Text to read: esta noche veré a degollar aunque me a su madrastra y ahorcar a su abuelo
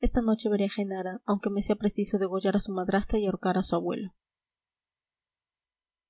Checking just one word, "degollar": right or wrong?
wrong